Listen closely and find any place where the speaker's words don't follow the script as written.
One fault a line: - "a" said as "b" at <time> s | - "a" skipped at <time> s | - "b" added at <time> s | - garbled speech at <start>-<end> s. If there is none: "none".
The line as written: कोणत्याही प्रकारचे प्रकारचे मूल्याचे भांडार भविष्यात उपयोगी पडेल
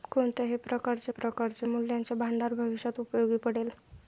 none